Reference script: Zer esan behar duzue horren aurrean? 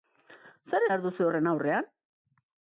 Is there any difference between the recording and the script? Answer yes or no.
yes